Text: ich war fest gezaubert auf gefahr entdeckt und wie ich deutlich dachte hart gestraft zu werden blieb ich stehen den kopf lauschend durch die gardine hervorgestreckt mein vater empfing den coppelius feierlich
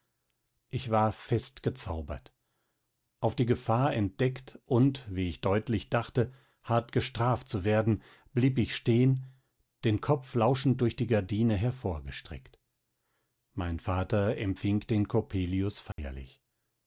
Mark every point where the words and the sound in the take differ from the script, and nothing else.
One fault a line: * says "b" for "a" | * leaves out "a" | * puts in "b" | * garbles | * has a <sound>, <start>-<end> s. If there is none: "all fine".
* puts in "die"
* has a dropout, 15.9-16.0 s